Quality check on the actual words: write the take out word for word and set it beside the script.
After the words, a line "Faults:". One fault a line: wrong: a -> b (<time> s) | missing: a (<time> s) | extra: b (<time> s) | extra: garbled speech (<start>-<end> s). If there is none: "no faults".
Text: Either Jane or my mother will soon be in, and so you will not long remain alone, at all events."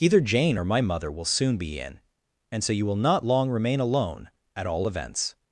Either Jane or my mother will soon be in, and so you will not long remain alone, at all events."
Faults:
no faults